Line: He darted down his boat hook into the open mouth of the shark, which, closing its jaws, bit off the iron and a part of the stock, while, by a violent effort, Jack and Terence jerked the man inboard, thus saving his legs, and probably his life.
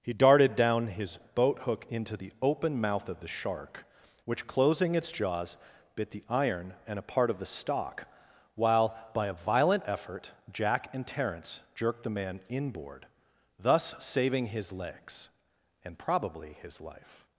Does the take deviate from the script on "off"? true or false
true